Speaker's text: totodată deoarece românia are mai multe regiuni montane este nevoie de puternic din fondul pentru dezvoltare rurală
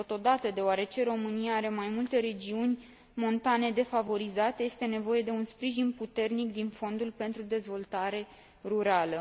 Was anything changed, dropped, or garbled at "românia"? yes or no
no